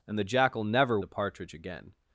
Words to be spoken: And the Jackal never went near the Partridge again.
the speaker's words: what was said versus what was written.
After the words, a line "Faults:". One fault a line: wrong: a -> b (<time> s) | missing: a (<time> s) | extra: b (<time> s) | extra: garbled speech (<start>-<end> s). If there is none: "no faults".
And the Jackal never the Partridge again.
Faults:
missing: went near (1.0 s)